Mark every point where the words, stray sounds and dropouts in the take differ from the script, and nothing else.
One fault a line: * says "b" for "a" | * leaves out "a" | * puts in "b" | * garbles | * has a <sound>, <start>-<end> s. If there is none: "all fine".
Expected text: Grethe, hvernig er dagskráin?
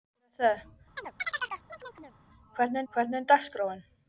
* has a chirp, 1.0-2.2 s
* puts in "hvernig"